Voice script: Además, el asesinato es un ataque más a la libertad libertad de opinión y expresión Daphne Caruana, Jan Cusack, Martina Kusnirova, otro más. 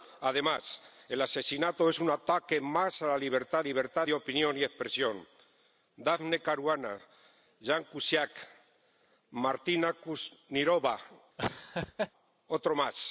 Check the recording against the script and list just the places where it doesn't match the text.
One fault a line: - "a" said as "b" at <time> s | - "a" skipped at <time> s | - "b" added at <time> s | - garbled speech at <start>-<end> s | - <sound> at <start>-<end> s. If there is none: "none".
- laugh at 11.4-12.1 s